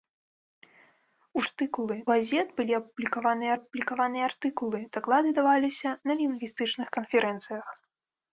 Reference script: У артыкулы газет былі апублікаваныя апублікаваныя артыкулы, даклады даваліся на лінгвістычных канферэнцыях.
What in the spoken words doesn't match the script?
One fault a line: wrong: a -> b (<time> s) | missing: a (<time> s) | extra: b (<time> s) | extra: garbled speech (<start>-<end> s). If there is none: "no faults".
no faults